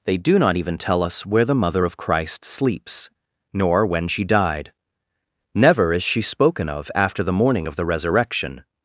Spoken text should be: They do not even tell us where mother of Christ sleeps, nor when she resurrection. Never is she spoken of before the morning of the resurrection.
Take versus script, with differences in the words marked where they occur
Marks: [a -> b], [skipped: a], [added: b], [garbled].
They do not even tell us where [added: the] mother of Christ sleeps, nor when she [resurrection. -> died] Never is she spoken of [before -> after] the morning of the resurrection.